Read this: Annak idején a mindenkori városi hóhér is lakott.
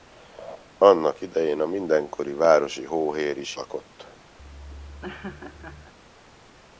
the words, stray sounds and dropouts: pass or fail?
fail